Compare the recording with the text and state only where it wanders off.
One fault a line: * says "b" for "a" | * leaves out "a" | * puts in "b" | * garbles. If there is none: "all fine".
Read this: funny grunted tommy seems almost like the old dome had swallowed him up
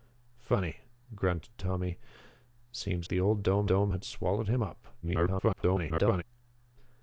* leaves out "almost like"
* puts in "dome"
* garbles